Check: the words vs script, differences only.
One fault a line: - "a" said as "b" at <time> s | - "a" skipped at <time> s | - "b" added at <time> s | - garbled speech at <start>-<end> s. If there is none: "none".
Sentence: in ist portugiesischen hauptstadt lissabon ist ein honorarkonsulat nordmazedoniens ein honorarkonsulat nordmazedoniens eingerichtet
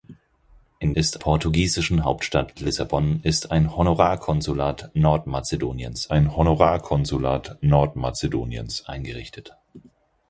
none